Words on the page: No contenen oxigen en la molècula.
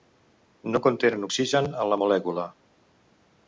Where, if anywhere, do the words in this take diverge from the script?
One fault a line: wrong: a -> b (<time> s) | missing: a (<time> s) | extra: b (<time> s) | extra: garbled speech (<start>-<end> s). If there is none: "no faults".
no faults